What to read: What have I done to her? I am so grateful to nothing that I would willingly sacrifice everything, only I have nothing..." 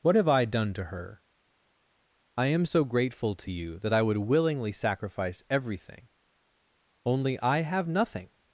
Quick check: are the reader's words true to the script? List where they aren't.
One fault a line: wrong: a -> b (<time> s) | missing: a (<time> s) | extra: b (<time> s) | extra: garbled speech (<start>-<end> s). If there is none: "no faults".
wrong: nothing -> you (3.5 s)